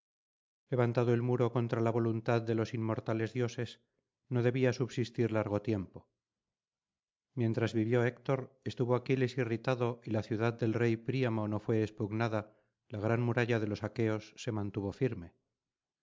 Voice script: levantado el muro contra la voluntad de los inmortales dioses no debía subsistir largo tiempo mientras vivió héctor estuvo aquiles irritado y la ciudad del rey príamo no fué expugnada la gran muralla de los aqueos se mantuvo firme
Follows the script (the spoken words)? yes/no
yes